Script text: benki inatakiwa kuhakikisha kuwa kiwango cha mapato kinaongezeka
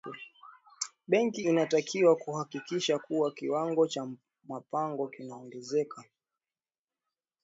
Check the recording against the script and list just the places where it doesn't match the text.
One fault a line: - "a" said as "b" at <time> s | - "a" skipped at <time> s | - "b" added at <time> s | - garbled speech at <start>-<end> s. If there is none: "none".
none